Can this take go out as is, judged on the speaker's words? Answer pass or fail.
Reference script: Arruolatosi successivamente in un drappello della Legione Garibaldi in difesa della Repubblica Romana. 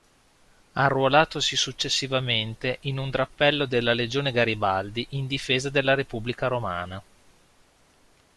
pass